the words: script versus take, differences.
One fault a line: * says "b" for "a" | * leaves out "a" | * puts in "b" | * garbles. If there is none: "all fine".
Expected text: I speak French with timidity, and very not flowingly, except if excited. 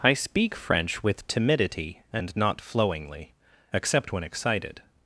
* leaves out "very"
* says "when" for "if"